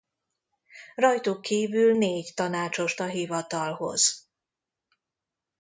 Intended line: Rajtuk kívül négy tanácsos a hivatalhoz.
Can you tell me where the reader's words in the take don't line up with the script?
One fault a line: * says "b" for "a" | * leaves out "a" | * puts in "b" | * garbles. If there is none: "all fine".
all fine